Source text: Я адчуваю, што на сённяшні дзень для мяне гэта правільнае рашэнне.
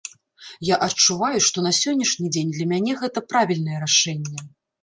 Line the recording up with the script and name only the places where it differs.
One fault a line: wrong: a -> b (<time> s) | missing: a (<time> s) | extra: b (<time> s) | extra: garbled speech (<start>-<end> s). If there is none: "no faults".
no faults